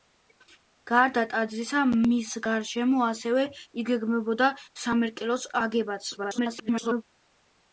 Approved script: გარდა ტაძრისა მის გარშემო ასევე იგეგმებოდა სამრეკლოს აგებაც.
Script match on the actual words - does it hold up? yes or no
no